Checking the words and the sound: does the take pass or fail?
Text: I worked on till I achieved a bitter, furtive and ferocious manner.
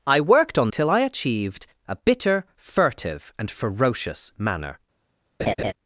fail